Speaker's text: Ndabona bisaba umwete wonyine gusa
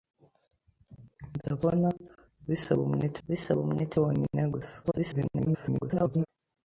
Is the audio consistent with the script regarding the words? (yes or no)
no